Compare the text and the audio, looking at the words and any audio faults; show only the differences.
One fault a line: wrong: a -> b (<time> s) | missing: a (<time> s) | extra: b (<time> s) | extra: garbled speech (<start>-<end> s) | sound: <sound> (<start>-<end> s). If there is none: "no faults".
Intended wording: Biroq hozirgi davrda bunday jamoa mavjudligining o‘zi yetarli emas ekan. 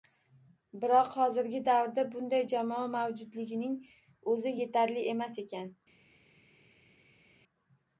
no faults